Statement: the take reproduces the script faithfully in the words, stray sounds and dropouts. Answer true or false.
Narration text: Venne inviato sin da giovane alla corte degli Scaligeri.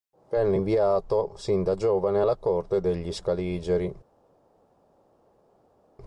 true